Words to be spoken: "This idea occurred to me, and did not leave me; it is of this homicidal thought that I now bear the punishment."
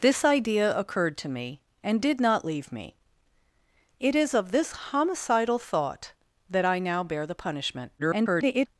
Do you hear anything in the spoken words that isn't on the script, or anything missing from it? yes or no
yes